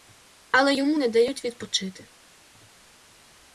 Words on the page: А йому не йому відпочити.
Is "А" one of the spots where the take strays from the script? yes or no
yes